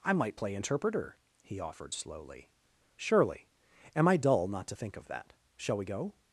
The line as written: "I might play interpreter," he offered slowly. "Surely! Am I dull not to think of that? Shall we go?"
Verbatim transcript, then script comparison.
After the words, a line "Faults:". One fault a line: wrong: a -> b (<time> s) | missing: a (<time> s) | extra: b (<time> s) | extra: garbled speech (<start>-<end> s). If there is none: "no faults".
"I might play interpreter," he offered slowly. "Surely! Am I dull not to think of that? Shall we go?"
Faults:
no faults